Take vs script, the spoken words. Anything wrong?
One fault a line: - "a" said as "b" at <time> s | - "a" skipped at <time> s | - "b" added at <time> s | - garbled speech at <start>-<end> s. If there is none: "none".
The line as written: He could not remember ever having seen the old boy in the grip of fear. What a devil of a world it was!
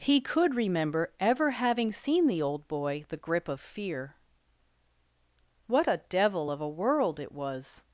- "not" skipped at 0.6 s
- "in" skipped at 3.0 s